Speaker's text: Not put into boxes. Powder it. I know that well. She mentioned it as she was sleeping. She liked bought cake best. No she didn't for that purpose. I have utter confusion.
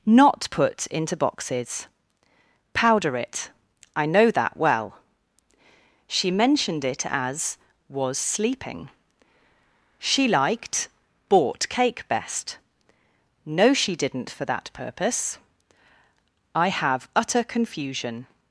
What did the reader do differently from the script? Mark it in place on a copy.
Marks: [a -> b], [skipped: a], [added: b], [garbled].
Not put into boxes. Powder it. I know that well. She mentioned it as [skipped: she] was sleeping. She liked bought cake best. No she didn't for that purpose. I have utter confusion.